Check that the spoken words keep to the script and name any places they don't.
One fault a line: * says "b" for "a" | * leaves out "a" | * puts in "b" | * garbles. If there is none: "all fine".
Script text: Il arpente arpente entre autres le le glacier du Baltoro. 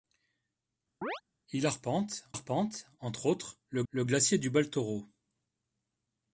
all fine